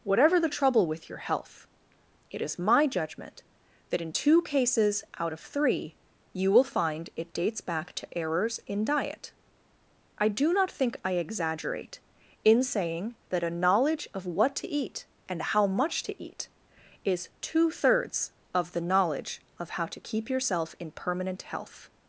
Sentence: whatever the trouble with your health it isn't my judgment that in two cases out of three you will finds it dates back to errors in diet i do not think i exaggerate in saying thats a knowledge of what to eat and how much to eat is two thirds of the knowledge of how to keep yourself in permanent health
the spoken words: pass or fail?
fail